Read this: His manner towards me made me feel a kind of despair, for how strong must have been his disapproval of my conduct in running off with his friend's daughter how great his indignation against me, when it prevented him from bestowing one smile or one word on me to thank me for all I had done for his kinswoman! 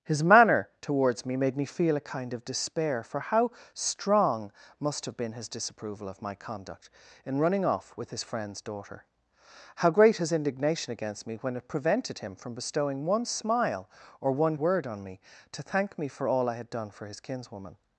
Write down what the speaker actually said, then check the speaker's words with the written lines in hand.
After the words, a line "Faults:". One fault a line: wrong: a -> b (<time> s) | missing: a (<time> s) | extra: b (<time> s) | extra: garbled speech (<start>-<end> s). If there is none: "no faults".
His manner towards me made me feel a kind of despair, for how strong must have been his disapproval of my conduct in running off with his friend's daughter how great his indignation against me, when it prevented him from bestowing one smile or one word on me to thank me for all I had done for his kinswoman!
Faults:
no faults